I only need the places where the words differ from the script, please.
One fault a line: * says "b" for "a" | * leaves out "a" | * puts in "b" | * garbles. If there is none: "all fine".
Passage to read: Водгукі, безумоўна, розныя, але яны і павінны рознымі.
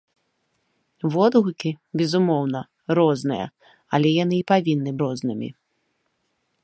all fine